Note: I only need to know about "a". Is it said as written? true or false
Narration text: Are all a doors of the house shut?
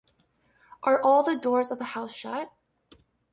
false